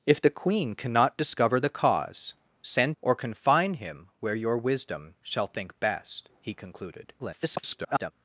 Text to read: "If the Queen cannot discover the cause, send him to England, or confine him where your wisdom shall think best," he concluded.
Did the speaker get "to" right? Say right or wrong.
wrong